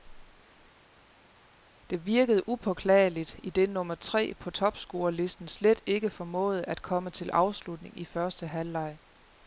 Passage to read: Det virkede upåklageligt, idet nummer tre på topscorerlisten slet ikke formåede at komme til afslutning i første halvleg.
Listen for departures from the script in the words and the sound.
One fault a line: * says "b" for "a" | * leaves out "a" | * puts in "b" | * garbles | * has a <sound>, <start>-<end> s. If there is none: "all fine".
all fine